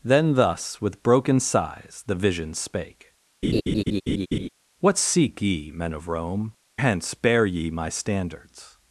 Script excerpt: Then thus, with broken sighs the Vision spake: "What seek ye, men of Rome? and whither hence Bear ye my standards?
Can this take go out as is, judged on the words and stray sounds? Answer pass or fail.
fail